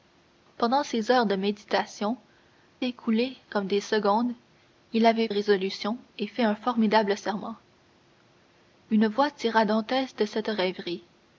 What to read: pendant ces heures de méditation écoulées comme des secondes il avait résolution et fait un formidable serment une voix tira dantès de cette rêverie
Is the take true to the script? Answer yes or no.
yes